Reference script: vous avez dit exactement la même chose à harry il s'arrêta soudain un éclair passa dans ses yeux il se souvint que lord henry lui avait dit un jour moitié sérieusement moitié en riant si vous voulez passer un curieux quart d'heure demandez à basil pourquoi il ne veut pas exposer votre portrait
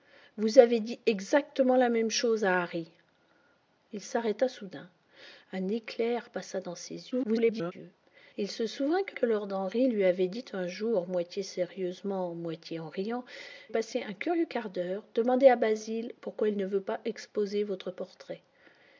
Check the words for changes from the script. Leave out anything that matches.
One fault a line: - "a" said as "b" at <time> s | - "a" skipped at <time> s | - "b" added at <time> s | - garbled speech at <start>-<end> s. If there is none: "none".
- garbled speech at 7.1-7.7 s
- "que" added at 9.1 s
- "si vous voulez" skipped at 13.2 s